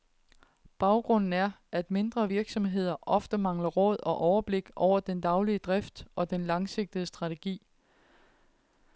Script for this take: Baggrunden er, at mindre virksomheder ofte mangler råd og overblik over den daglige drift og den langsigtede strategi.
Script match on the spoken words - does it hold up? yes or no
yes